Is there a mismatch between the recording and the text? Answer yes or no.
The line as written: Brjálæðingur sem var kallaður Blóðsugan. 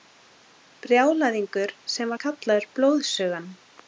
no